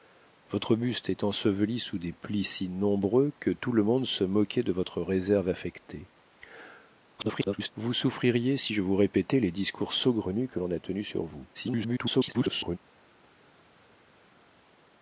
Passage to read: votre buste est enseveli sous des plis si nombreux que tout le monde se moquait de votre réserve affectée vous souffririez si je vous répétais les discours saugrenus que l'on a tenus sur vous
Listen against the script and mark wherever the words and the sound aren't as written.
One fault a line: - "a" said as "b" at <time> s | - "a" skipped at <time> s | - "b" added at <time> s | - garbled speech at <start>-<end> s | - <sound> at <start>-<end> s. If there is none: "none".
- garbled speech at 7.2-7.7 s
- garbled speech at 11.5-12.8 s